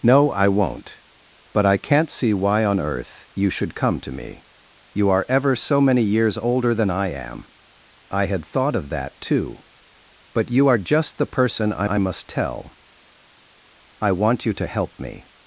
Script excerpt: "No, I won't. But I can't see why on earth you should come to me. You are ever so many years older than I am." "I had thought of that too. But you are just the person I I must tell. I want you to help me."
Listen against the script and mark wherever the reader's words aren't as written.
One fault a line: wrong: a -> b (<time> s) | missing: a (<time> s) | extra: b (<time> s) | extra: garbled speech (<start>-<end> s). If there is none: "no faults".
no faults